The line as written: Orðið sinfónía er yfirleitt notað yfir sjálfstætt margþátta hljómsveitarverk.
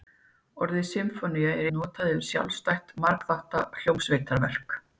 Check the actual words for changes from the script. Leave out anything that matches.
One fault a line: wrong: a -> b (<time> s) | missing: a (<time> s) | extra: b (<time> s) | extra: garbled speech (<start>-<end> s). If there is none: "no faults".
missing: yfirleitt (1.7 s)